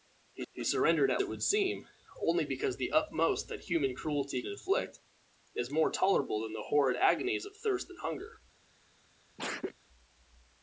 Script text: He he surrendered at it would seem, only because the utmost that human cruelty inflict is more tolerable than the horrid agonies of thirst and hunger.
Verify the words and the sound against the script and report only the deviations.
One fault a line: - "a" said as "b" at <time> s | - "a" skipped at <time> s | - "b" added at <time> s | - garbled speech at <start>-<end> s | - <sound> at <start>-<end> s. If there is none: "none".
- sneeze at 9.4-9.7 s